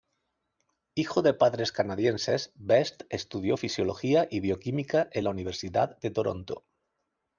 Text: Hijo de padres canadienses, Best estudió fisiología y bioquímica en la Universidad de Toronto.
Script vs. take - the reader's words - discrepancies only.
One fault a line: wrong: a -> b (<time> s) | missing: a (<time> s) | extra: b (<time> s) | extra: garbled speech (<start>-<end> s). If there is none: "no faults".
no faults